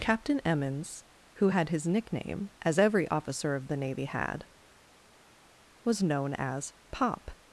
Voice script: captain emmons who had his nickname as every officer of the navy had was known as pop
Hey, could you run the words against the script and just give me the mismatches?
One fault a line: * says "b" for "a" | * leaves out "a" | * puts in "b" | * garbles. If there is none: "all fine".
all fine